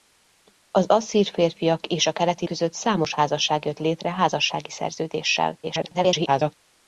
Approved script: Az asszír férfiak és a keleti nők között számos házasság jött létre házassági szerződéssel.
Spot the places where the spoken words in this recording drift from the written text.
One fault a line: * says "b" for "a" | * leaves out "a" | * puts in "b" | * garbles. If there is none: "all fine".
* leaves out "nők"
* garbles